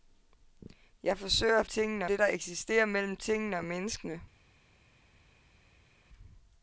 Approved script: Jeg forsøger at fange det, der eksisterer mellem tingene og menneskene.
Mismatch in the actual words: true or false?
true